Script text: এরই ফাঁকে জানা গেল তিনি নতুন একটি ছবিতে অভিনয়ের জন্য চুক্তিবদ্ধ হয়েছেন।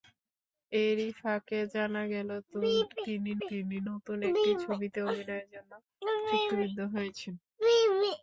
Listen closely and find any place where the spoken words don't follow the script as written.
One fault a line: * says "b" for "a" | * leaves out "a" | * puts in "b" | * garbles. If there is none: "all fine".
* puts in "তিনি"